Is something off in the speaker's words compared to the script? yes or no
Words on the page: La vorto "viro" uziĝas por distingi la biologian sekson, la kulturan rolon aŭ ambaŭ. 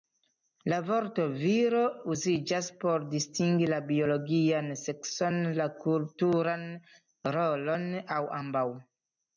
no